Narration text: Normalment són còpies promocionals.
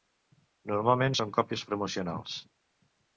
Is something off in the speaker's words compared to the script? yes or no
no